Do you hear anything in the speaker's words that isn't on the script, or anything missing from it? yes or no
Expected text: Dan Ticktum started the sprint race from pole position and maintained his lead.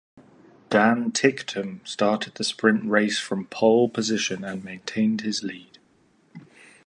no